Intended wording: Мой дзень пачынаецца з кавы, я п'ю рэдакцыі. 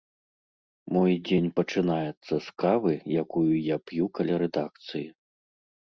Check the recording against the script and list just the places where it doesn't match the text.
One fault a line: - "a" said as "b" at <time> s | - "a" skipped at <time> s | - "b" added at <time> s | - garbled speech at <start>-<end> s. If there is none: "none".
- "якую" added at 3.2 s
- "каля" added at 4.2 s